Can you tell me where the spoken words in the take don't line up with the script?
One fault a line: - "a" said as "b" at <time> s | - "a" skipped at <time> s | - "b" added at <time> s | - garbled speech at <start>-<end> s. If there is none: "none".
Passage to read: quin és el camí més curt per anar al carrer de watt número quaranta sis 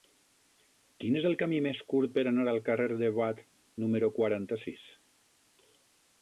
none